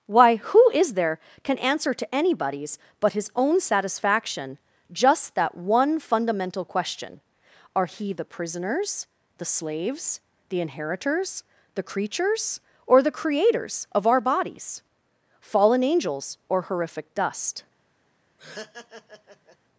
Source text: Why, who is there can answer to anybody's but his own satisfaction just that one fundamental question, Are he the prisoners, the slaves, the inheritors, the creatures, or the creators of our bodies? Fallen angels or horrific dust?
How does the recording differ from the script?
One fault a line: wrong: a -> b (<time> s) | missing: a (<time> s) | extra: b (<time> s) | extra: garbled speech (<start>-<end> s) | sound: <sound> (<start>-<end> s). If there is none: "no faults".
sound: laugh (18.4-19.6 s)